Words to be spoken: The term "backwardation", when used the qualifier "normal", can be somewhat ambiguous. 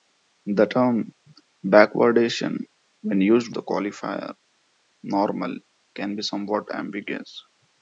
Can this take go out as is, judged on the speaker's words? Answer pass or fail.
pass